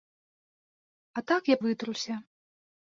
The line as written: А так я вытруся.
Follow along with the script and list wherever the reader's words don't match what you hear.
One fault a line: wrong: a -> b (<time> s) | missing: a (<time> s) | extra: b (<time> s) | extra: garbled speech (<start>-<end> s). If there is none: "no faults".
no faults